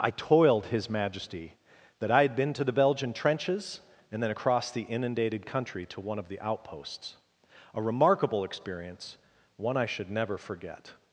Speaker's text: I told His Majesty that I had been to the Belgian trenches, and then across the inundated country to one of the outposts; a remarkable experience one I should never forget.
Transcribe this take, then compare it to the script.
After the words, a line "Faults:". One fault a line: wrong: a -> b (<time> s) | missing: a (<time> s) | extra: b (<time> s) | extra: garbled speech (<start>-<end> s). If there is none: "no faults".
I toiled His Majesty that I had been to the Belgian trenches, and then across the inundated country to one of the outposts; a remarkable experience one I should never forget.
Faults:
wrong: told -> toiled (0.1 s)